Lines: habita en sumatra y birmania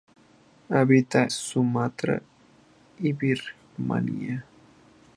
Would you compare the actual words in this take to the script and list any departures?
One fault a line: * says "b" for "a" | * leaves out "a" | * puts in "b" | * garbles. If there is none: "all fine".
* leaves out "en"